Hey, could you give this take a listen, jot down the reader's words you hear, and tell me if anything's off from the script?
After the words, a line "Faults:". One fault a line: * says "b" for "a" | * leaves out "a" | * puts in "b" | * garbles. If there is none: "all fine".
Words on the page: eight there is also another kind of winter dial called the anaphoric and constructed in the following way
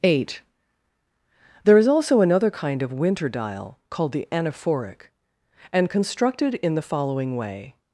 eight there is also another kind of winter dial called the anaphoric and constructed in the following way
Faults:
all fine